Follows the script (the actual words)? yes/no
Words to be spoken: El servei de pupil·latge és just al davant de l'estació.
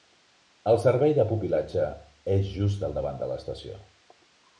yes